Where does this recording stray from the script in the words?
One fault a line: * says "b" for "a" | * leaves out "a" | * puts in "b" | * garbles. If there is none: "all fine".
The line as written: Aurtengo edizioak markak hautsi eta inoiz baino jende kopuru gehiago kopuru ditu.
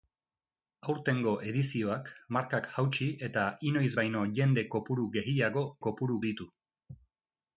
all fine